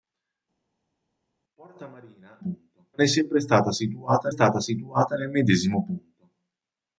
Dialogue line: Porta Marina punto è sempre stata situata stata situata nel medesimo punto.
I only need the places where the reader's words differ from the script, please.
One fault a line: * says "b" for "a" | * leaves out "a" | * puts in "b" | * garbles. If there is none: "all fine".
all fine